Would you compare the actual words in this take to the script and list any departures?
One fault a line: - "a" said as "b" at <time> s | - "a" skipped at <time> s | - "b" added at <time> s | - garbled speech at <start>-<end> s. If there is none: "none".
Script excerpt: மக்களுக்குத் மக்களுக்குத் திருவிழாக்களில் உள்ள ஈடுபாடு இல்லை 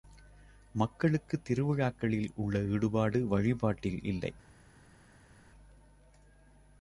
- "மக்களுக்குத்" skipped at 1.4 s
- "வழிபாட்டில்" added at 3.3 s